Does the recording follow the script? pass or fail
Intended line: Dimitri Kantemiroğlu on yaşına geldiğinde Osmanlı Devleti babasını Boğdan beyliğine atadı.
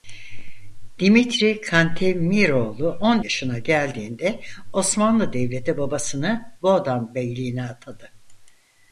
pass